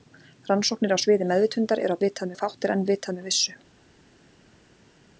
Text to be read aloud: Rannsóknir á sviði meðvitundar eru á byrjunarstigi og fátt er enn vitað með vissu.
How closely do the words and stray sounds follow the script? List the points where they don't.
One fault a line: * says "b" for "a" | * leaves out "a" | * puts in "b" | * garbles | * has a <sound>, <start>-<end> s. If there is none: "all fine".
* says "vitað" for "byrjunarstigi"